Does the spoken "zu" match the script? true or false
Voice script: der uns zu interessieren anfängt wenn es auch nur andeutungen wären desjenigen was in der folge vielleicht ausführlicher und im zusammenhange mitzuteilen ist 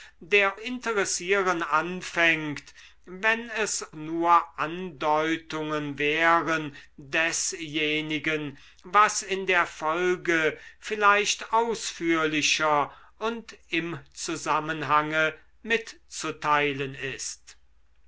false